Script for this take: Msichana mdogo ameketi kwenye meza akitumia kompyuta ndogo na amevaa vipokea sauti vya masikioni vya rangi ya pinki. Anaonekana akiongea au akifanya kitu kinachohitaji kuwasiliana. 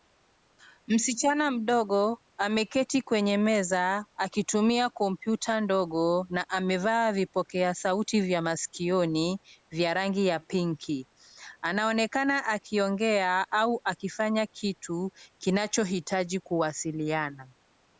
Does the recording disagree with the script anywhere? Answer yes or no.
no